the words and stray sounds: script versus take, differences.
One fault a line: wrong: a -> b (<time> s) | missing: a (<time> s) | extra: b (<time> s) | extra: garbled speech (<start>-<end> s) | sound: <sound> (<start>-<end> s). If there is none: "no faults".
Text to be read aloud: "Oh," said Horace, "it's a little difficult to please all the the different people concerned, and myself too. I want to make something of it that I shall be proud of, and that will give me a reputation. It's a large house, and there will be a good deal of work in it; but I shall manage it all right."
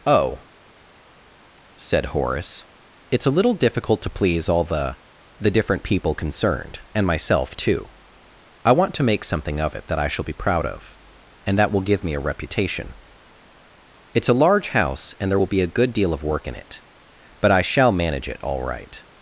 no faults